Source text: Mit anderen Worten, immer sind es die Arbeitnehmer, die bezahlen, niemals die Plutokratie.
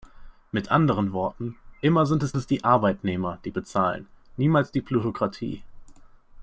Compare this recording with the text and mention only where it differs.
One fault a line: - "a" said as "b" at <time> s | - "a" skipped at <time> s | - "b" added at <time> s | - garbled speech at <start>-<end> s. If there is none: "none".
- "es" added at 2.4 s